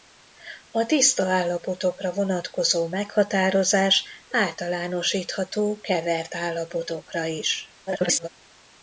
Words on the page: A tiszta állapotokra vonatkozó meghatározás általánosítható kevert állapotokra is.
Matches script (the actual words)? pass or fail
fail